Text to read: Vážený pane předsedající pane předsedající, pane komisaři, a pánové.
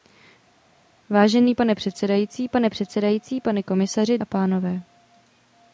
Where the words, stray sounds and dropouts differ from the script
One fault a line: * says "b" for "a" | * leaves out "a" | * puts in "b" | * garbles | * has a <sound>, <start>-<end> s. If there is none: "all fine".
all fine